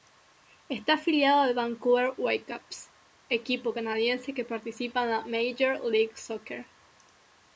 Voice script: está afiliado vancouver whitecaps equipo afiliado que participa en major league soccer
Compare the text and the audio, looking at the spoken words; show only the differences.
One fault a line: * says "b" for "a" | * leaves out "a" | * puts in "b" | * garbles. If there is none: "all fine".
* puts in "al"
* says "canadiense" for "afiliado"
* puts in "la"